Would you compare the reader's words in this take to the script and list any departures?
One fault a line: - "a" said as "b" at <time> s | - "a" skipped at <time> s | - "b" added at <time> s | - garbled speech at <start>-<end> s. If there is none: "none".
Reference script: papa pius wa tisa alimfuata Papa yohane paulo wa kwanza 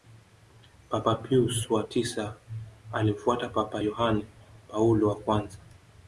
none